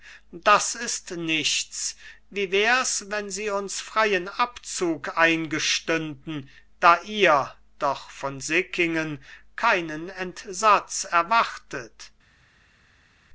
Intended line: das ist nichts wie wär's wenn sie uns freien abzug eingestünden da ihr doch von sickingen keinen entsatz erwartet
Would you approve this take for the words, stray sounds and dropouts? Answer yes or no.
yes